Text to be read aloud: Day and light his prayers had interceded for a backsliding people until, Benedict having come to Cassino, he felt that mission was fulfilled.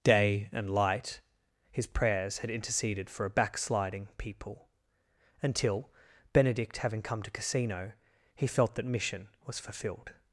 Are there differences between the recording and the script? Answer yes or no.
no